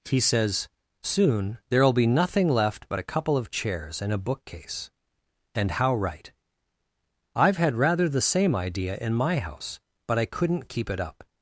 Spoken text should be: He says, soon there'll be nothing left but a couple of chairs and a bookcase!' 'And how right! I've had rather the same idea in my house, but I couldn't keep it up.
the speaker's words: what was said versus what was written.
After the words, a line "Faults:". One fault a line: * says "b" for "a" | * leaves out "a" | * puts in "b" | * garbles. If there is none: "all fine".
He says, soon there'll be nothing left but a couple of chairs and a bookcase!' 'And how right! I've had rather the same idea in my house, but I couldn't keep it up.
Faults:
all fine